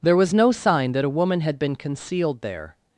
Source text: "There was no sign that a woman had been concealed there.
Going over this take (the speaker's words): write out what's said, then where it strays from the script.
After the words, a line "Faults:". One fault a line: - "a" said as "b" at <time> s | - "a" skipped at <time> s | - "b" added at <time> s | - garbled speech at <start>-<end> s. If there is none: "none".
"There was no sign that a woman had been concealed there.
Faults:
none